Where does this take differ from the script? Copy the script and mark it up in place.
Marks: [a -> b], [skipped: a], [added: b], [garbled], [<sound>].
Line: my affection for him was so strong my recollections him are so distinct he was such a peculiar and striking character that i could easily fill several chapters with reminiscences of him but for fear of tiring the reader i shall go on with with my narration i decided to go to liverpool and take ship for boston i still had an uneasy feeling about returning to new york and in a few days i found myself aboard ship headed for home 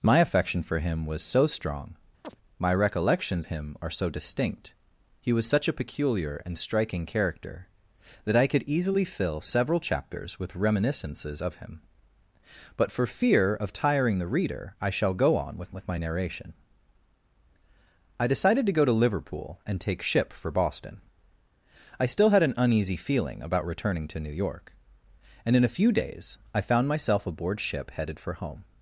my affection for him was so strong [chirp] my recollections him are so distinct he was such a peculiar and striking character that i could easily fill several chapters with reminiscences of him but for fear of tiring the reader i shall go on with with my narration i decided to go to liverpool and take ship for boston i still had an uneasy feeling about returning to new york and in a few days i found myself aboard ship headed for home